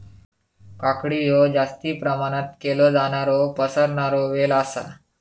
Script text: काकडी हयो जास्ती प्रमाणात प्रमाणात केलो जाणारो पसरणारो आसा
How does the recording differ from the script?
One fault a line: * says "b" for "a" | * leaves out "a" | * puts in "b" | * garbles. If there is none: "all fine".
* leaves out "प्रमाणात"
* puts in "वेल"